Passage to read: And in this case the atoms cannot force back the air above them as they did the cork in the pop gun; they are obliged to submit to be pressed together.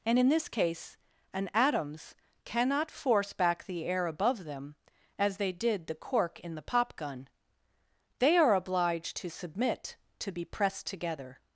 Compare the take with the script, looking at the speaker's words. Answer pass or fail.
fail